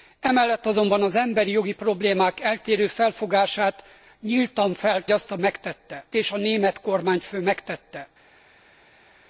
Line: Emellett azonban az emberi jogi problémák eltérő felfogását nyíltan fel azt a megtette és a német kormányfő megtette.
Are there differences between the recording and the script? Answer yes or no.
no